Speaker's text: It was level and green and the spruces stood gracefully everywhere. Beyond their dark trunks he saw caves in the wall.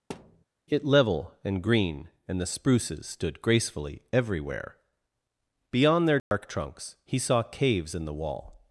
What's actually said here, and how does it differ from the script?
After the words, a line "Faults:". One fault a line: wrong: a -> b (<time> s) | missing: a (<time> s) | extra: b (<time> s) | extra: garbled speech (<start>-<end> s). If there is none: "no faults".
It level and green and the spruces stood gracefully everywhere. Beyond their dark trunks he saw caves in the wall.
Faults:
missing: was (0.8 s)